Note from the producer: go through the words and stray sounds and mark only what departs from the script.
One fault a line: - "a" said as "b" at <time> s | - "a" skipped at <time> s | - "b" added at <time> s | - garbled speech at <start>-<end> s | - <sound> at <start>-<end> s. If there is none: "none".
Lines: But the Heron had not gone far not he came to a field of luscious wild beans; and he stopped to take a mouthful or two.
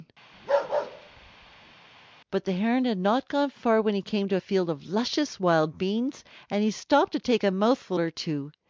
- bark at 0.3-1.7 s
- "not" said as "when" at 3.8 s